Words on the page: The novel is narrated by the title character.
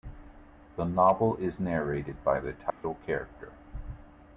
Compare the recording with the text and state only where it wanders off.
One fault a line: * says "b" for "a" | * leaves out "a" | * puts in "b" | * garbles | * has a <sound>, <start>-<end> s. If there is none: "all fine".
* has a dropout, 2.7-2.8 s